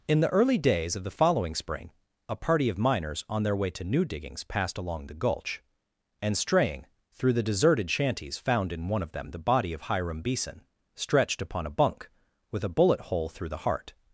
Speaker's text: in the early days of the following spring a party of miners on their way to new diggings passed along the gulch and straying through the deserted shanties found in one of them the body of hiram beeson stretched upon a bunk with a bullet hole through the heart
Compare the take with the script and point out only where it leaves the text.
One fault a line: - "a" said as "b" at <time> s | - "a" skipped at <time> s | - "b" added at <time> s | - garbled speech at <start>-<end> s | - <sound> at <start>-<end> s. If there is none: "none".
none